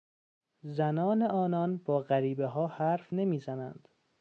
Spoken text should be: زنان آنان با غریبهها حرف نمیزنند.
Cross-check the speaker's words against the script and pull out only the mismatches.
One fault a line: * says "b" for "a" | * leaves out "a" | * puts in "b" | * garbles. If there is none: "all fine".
all fine